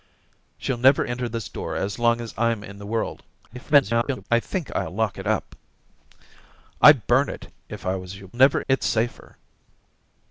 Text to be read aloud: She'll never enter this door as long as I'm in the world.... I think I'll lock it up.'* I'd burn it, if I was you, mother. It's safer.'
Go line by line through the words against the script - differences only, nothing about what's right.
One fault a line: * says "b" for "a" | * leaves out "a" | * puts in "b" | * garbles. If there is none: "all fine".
* garbles
* says "never" for "mother"